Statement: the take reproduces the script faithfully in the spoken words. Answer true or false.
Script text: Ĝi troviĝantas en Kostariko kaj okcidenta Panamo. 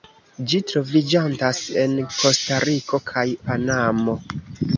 false